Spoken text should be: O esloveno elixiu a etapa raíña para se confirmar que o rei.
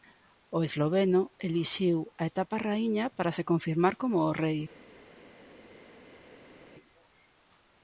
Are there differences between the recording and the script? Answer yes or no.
yes